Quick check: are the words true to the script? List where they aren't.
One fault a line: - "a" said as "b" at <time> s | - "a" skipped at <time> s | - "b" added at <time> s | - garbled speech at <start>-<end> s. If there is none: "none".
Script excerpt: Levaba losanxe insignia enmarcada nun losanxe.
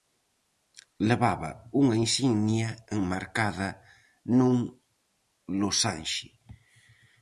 - "losanxe" said as "unha" at 1.8 s